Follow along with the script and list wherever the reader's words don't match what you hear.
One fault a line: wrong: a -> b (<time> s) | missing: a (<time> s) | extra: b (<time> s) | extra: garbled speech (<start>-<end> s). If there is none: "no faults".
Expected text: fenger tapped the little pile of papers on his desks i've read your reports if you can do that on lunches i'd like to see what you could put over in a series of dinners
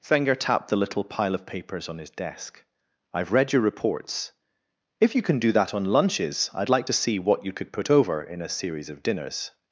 wrong: desks -> desk (2.1 s)